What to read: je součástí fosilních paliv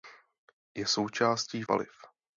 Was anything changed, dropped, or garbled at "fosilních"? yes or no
yes